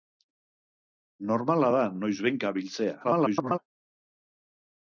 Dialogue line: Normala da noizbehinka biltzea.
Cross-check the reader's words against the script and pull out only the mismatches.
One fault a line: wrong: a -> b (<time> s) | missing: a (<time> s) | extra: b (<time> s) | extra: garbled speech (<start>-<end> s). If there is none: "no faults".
extra: garbled speech (3.0-3.6 s)